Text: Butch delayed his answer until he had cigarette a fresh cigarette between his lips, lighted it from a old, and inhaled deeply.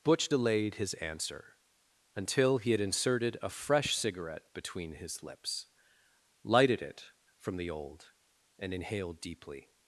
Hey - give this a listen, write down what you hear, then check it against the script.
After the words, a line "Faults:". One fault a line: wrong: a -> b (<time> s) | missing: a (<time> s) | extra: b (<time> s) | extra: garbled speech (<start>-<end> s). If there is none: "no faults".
Butch delayed his answer until he had inserted a fresh cigarette between his lips, lighted it from the old, and inhaled deeply.
Faults:
wrong: cigarette -> inserted (2.8 s)
wrong: a -> the (7.6 s)